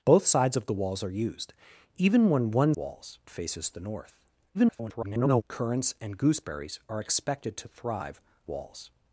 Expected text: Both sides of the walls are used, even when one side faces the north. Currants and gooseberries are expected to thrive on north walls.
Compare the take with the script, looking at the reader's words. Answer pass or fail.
fail